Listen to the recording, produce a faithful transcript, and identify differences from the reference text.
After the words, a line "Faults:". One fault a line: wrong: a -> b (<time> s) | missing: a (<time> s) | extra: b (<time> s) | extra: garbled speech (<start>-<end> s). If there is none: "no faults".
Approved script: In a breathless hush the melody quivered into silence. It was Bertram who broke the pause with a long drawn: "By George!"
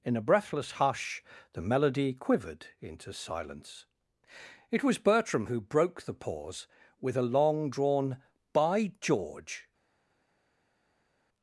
In a breathless hush the melody quivered into silence. It was Bertram who broke the pause with a long drawn: "By George!"
Faults:
no faults